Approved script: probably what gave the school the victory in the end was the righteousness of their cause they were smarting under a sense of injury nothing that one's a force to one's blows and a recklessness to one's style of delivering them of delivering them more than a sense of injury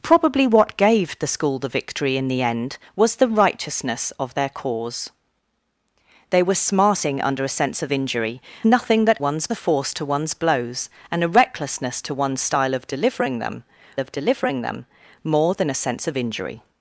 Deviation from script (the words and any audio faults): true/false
false